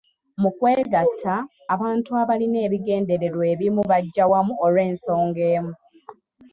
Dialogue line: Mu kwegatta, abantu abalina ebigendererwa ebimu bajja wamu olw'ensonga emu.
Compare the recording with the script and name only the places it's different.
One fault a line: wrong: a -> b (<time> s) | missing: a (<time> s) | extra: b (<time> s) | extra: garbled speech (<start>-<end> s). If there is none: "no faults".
no faults